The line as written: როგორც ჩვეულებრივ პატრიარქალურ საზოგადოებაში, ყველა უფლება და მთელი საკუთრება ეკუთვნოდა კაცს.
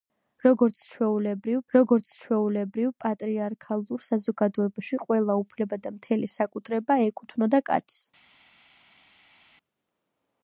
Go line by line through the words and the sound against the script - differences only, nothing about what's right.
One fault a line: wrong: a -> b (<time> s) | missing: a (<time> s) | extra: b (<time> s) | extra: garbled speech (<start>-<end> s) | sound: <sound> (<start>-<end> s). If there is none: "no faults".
extra: როგორც ჩვეულებრივ (1.7 s)